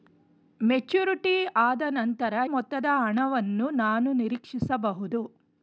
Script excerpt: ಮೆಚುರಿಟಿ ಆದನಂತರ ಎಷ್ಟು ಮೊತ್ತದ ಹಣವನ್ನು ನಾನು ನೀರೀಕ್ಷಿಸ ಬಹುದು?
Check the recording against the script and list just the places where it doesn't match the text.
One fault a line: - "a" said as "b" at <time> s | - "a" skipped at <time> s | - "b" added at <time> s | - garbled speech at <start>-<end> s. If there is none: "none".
- "ಎಷ್ಟು" skipped at 2.3 s